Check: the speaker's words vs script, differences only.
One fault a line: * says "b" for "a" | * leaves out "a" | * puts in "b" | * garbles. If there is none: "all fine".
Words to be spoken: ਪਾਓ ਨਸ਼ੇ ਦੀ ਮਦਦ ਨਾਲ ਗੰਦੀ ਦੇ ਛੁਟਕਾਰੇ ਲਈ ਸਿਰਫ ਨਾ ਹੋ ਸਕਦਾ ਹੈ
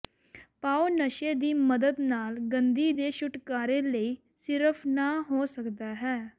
all fine